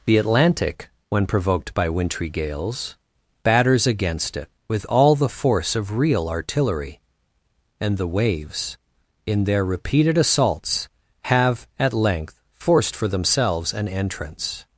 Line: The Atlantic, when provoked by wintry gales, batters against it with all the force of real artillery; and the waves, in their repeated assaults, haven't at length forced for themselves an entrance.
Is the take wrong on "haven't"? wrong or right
wrong